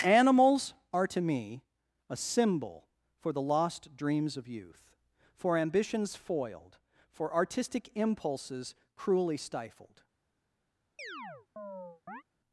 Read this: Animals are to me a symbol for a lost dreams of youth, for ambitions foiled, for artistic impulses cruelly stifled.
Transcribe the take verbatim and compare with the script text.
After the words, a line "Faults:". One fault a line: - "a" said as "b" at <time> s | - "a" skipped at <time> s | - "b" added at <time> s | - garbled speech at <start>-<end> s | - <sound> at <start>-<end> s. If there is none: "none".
Animals are to me a symbol for the lost dreams of youth, for ambitions foiled, for artistic impulses cruelly stifled.
Faults:
- "a" said as "the" at 3.3 s
- chirp at 11.0-12.2 s